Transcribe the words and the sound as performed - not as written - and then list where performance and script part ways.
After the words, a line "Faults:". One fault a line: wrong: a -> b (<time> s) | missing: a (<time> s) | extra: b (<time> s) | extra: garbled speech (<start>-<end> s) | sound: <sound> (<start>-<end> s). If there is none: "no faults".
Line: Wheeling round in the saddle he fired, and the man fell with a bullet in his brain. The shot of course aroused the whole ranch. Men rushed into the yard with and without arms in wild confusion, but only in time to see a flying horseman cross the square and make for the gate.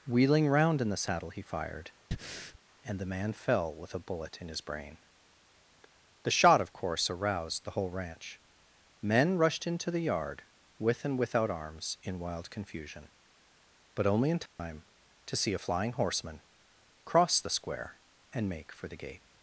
Wheeling round in the saddle he fired, and the man fell with a bullet in his brain. The shot of course aroused the whole ranch. Men rushed into the yard with and without arms in wild confusion, but only in time to see a flying horseman cross the square and make for the gate.
Faults:
sound: breath (2.1-2.6 s)
sound: dropout (14.5-14.6 s)